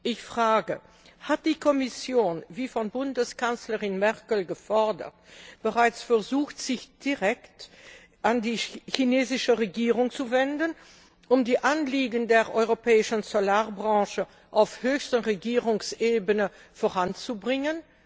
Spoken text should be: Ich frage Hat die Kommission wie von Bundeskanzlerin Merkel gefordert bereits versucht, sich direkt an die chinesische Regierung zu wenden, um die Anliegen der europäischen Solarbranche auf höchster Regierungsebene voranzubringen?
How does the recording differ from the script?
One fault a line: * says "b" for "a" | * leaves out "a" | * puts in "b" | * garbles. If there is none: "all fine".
all fine